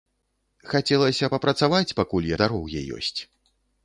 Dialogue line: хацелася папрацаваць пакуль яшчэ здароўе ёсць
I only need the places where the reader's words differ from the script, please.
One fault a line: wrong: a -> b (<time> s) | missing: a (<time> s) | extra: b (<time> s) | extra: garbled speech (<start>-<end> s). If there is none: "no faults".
missing: яшчэ (2.3 s)